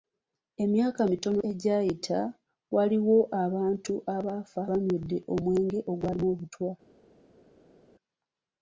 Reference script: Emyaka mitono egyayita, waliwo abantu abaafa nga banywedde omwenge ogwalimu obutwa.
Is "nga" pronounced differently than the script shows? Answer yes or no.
yes